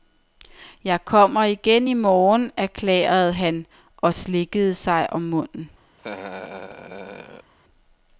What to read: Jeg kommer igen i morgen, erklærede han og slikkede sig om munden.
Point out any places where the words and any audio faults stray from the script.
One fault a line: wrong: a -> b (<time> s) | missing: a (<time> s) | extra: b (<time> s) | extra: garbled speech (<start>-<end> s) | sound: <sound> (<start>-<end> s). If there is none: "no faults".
sound: laugh (6.0-7.5 s)